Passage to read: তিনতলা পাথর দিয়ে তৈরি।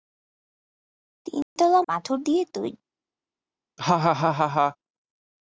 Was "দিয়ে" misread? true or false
false